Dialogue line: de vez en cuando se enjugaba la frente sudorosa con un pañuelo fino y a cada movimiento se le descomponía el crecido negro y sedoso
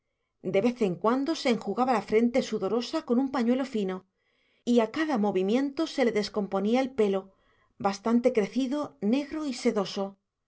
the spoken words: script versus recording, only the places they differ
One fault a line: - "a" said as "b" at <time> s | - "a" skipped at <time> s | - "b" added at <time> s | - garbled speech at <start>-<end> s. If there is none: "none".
- "pelo bastante" added at 7.0 s